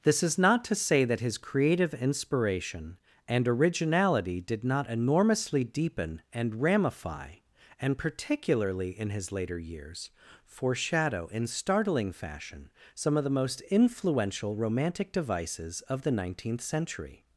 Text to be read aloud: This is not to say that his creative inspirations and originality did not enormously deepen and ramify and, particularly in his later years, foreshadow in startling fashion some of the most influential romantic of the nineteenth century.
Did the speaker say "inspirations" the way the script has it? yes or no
no